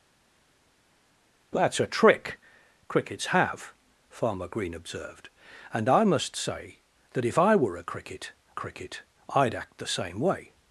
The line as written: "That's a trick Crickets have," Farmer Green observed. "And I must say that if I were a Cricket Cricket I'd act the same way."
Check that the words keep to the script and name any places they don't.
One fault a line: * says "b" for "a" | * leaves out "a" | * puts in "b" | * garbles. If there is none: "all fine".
all fine